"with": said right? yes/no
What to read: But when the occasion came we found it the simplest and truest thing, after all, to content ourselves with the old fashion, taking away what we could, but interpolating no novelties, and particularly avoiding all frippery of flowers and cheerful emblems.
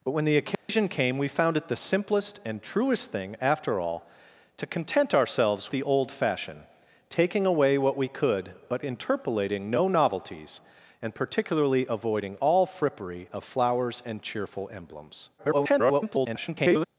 no